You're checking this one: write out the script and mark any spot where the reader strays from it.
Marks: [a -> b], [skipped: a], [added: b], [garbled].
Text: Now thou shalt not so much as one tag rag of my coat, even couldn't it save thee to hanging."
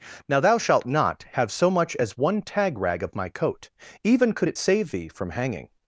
Now thou shalt not [added: have] so much as one tag rag of my coat, even [couldn't -> could] it save thee [to -> from] hanging."